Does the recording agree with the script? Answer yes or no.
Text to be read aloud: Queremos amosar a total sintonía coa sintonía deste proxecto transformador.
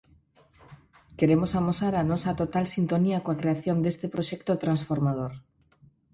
no